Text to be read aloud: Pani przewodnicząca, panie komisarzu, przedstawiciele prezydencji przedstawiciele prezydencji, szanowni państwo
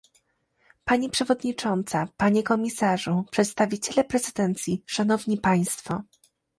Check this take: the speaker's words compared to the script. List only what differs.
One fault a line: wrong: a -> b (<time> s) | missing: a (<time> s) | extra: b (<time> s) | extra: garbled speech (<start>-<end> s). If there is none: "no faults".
missing: przedstawiciele prezydencji (4.8 s)